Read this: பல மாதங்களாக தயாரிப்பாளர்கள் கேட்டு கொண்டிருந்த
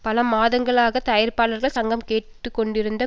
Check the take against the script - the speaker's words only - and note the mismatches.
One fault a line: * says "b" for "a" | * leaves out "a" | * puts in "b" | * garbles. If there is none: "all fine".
* puts in "சங்கம்"